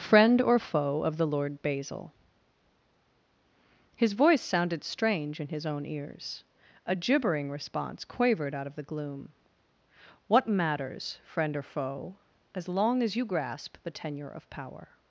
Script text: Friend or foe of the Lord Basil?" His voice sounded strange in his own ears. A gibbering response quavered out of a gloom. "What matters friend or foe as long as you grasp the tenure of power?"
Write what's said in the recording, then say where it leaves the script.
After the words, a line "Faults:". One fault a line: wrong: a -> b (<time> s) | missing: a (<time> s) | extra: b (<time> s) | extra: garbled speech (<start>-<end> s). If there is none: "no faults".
Friend or foe of the Lord Basil?" His voice sounded strange in his own ears. A gibbering response quavered out of the gloom. "What matters friend or foe as long as you grasp the tenure of power?"
Faults:
wrong: a -> the (8.8 s)